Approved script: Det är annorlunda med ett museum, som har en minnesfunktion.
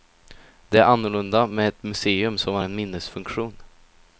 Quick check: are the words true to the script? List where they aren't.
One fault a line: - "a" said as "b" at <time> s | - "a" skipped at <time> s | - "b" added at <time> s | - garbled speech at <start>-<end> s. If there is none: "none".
none